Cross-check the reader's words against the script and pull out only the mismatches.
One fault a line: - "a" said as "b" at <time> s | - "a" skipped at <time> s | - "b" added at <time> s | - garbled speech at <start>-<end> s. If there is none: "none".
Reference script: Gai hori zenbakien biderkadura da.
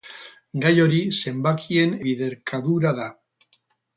none